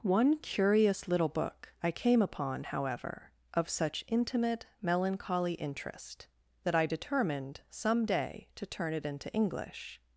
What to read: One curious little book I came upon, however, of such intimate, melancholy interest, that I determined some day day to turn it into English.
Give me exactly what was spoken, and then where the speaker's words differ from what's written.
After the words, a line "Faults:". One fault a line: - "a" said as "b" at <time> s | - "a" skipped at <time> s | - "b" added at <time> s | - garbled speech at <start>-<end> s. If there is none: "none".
One curious little book I came upon, however, of such intimate, melancholy interest, that I determined some day to turn it into English.
Faults:
- "day" skipped at 8.5 s